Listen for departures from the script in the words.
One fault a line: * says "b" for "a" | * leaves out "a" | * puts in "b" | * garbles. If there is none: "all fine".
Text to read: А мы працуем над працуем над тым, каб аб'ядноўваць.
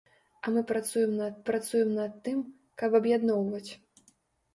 all fine